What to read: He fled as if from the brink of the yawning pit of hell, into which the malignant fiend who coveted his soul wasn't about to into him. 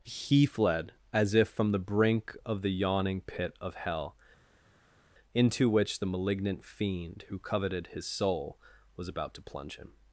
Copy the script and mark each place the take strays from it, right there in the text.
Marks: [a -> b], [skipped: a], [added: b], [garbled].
He fled as if from the brink of the yawning pit of hell, into which the malignant fiend who coveted his soul [wasn't -> was] about to [into -> plunge] him.